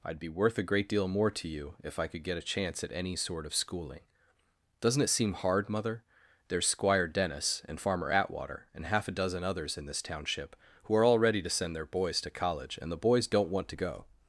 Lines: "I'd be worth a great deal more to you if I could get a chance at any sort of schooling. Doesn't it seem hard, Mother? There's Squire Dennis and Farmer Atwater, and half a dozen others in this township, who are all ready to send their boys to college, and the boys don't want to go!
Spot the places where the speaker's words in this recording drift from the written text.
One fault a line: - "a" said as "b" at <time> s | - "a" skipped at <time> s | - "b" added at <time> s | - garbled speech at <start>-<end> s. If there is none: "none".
none